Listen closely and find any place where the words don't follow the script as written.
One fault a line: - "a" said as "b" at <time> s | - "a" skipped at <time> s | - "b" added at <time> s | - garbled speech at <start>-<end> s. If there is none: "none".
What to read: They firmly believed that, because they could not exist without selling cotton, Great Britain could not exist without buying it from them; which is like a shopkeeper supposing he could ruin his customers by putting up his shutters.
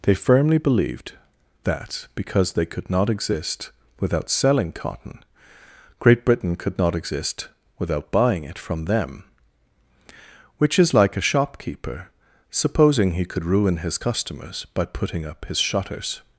none